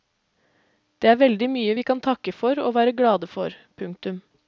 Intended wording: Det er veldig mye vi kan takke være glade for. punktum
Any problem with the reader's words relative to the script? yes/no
yes